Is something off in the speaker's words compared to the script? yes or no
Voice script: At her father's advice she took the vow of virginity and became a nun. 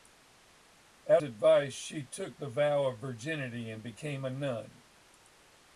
yes